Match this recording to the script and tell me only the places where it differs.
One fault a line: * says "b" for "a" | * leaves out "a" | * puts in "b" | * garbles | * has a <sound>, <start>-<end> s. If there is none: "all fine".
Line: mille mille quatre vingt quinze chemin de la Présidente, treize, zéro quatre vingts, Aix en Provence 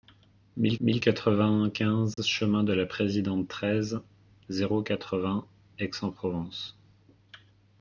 * has a dropout, 2.1-2.2 s